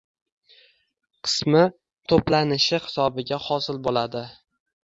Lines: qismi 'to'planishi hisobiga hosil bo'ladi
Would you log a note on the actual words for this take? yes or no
no